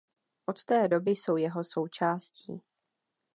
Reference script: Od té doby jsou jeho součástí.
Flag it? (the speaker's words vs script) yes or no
no